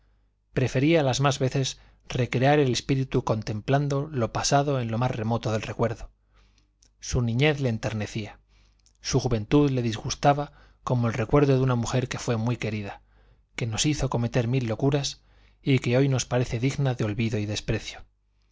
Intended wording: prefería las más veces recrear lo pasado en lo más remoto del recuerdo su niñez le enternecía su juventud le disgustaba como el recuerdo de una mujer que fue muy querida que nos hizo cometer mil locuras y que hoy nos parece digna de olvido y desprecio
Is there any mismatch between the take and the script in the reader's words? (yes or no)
yes